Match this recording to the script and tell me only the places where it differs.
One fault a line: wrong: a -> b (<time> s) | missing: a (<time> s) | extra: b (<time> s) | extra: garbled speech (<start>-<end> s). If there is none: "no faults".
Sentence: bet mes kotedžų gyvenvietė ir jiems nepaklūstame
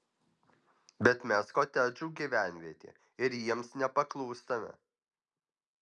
no faults